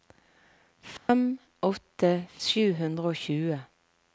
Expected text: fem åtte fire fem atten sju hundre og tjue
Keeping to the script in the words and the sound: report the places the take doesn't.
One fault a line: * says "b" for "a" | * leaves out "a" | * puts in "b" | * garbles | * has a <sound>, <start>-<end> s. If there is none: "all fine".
* has a dropout, 1.0-1.1 s
* leaves out "fire fem atten"